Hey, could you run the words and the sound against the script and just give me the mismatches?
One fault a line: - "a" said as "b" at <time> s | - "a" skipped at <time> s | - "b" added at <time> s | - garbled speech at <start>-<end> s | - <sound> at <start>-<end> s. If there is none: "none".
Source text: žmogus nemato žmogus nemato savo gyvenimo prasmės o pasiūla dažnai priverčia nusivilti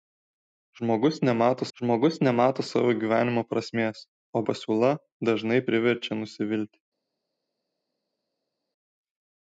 none